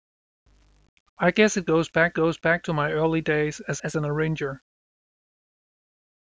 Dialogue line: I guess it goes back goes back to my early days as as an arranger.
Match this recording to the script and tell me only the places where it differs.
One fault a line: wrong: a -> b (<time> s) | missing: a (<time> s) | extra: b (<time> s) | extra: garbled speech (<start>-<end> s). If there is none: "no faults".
no faults